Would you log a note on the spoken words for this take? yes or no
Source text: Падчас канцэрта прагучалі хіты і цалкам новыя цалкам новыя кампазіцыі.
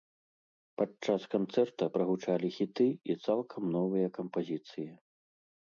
yes